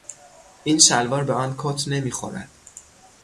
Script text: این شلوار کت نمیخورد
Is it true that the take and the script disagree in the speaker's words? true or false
true